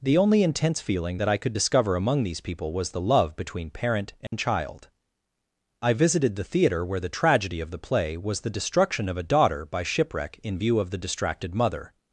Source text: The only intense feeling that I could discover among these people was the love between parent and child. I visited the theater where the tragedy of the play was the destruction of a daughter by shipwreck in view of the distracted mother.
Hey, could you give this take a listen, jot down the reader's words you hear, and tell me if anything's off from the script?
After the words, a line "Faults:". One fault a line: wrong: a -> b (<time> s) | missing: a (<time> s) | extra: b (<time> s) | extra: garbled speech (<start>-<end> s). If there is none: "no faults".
The only intense feeling that I could discover among these people was the love between parent and child. I visited the theater where the tragedy of the play was the destruction of a daughter by shipwreck in view of the distracted mother.
Faults:
no faults